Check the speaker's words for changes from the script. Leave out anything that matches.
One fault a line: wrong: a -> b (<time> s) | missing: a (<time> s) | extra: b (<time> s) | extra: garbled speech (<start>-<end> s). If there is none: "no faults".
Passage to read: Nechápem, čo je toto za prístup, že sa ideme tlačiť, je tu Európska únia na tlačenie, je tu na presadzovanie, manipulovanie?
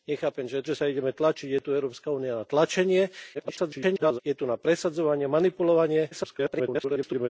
missing: toto za prístup (0.7 s)
extra: garbled speech (3.3-4.2 s)
extra: garbled speech (6.1-7.3 s)